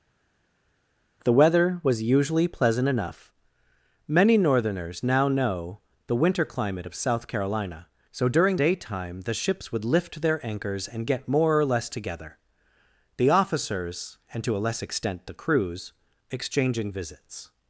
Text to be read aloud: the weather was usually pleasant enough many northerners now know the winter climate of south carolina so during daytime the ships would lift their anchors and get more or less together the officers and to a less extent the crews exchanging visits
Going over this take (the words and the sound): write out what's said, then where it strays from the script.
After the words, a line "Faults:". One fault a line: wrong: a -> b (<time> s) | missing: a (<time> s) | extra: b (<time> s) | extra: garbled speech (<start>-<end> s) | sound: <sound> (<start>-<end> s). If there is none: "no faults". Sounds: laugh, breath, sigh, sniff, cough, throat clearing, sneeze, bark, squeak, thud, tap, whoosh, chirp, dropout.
the weather was usually pleasant enough many northerners now know the winter climate of south carolina so during daytime the ships would lift their anchors and get more or less together the officers and to a less extent the crews exchanging visits
Faults:
no faults